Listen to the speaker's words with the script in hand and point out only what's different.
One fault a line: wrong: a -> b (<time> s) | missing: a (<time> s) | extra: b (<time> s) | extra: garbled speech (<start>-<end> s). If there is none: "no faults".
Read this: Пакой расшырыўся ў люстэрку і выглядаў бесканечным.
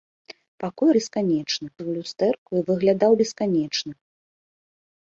wrong: расшырыўся -> бесканечным (1.0 s)